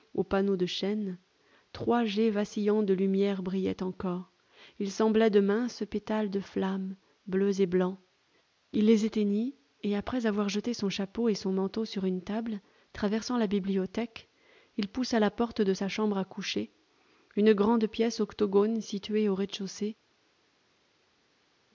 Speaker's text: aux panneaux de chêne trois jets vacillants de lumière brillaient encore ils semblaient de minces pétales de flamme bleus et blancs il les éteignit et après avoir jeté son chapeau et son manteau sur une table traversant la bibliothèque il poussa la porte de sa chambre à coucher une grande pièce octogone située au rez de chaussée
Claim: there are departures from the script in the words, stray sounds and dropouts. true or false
false